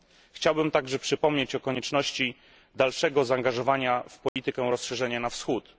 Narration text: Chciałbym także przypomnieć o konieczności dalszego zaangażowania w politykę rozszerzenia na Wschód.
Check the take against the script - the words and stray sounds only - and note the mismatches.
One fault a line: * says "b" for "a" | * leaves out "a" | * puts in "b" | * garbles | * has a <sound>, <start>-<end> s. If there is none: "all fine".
* has a dropout, 4.3-4.4 s